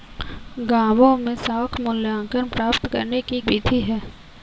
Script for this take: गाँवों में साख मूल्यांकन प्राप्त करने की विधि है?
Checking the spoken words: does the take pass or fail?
pass